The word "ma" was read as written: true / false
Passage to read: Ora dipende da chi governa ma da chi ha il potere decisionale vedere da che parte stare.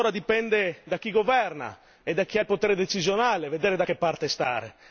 false